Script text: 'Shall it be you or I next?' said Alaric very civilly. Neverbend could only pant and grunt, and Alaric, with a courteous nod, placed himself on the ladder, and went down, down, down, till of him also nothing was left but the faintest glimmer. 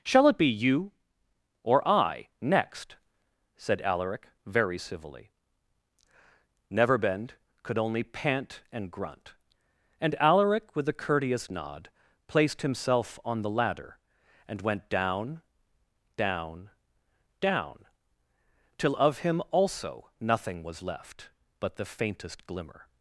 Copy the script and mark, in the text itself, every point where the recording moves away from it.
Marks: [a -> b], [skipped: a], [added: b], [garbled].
'Shall it be you or I next?' said Alaric very civilly. Neverbend could only pant and grunt, and Alaric, with a courteous nod, placed himself on the ladder, and went down, down, down, till of him also nothing was left but the faintest glimmer.